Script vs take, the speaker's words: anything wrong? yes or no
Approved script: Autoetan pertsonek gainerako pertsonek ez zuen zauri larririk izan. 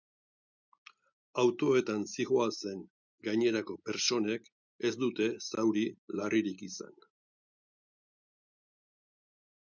yes